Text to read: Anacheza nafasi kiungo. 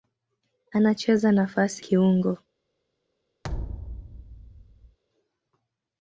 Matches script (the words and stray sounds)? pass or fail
fail